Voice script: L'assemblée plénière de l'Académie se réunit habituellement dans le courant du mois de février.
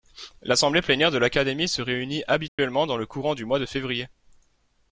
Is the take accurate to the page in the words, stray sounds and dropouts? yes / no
no